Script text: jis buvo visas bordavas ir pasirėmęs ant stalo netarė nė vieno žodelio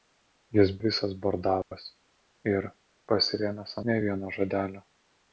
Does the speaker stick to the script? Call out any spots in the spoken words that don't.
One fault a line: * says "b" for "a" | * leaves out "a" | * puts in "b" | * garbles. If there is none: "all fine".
* leaves out "buvo"
* leaves out "ant stalo netarė"